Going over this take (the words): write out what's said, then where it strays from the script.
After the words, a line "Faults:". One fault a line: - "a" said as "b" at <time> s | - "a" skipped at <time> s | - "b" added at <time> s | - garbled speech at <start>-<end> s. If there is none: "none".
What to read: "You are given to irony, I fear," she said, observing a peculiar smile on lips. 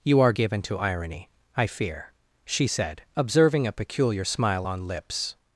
"You are given to irony, I fear," she said, observing a peculiar smile on lips.
Faults:
none